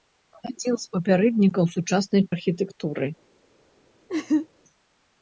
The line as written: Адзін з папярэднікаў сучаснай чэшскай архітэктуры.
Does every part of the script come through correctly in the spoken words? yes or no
no